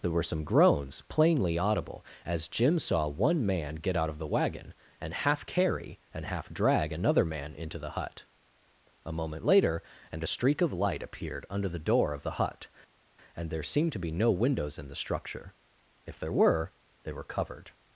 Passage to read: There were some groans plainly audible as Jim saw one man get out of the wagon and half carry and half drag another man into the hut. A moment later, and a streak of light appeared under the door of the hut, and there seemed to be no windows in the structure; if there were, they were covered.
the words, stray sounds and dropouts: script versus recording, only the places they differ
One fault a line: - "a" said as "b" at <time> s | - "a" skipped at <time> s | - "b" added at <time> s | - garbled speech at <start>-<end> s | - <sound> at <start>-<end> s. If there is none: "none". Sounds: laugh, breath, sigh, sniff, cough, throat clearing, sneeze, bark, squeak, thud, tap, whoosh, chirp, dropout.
none